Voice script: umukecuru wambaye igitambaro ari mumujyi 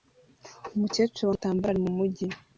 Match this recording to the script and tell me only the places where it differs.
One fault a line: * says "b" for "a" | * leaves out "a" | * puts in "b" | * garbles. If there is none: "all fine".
* leaves out "wambaye"